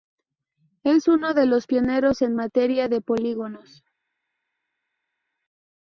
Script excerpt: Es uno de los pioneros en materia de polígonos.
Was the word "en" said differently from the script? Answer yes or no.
no